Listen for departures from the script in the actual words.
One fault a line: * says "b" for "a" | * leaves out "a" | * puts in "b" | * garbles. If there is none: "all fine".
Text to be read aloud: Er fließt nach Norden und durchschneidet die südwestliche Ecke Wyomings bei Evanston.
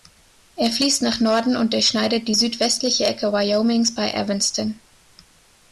all fine